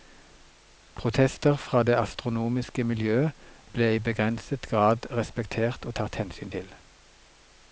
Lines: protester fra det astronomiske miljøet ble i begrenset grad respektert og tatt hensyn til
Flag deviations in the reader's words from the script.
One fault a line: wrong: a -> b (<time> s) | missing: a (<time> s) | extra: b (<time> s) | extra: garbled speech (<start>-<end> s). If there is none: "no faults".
no faults